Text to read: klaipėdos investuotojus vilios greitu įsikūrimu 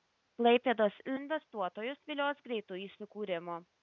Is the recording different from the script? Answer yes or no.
no